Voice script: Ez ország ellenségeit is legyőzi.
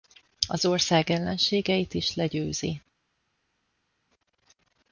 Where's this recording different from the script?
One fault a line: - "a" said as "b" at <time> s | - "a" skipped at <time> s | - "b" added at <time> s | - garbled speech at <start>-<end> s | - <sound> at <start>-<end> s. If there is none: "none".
- "Ez" said as "Az" at 0.5 s